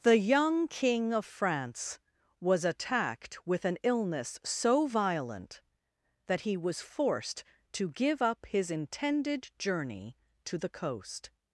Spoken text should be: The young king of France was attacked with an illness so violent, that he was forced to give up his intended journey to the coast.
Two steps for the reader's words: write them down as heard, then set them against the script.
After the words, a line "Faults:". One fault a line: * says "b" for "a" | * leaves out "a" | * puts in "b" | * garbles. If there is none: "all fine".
The young king of France was attacked with an illness so violent, that he was forced to give up his intended journey to the coast.
Faults:
all fine